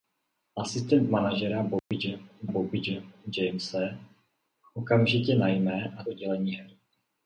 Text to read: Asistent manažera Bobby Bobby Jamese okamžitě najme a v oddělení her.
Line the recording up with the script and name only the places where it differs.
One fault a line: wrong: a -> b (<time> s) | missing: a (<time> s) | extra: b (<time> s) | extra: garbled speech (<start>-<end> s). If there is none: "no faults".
no faults